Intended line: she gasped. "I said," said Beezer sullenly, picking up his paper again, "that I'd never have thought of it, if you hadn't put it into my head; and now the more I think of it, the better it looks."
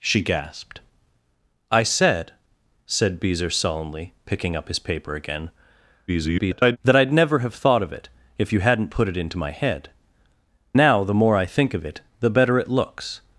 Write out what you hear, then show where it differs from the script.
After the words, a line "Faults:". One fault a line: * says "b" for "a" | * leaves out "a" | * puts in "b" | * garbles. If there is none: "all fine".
she gasped. "I said," said Beezer sullenly, picking up his paper again, [garbled] "that I'd never have thought of it, if you hadn't put it into my head; now the more I think of it, the better it looks."
Faults:
* garbles
* leaves out "and"